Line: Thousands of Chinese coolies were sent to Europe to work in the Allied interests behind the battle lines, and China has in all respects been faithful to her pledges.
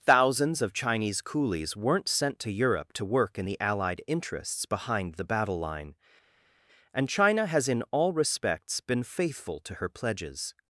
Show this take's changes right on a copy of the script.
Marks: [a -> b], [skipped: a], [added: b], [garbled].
Thousands of Chinese coolies [were -> weren't] sent to Europe to work in the Allied interests behind the battle [lines, -> line] and China has in all respects been faithful to her pledges.